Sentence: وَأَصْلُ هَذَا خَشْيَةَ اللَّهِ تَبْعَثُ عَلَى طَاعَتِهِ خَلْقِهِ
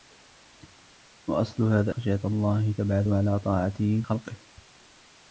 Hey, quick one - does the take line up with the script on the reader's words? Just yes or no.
yes